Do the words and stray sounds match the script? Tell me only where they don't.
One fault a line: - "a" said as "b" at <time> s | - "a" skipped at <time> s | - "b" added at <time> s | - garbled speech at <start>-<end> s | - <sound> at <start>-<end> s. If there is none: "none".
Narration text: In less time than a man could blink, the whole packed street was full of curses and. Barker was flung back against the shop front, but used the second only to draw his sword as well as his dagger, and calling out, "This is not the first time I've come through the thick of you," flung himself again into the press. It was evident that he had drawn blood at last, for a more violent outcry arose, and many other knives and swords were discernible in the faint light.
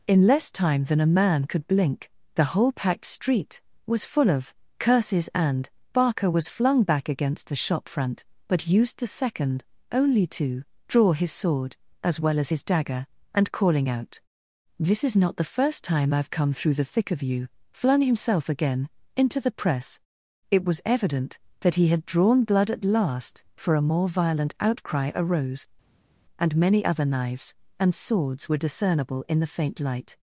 none